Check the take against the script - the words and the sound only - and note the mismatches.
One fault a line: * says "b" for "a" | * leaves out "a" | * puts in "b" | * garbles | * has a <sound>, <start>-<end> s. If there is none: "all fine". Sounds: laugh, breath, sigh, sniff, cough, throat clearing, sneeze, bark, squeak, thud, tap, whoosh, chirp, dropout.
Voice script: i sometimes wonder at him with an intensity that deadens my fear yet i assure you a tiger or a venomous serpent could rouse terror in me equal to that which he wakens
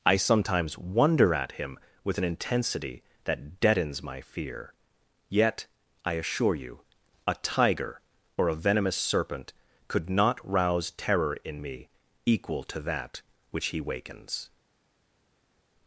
* puts in "not"